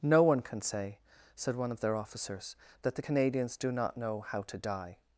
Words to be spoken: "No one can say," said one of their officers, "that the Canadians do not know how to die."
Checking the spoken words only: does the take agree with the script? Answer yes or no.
yes